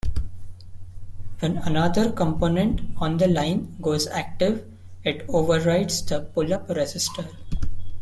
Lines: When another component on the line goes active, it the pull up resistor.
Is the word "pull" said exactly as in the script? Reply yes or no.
yes